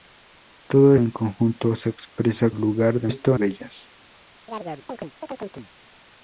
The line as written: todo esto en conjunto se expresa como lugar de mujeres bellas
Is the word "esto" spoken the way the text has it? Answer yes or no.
no